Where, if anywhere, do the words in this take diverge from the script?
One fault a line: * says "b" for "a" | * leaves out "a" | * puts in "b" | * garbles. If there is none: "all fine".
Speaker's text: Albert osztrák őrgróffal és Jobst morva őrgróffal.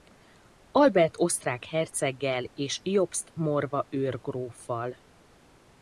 * says "herceggel" for "őrgróffal"